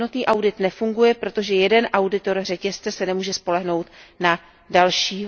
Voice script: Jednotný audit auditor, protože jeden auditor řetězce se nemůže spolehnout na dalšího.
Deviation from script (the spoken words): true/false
true